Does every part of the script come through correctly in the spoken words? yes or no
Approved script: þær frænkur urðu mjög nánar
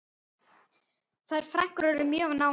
yes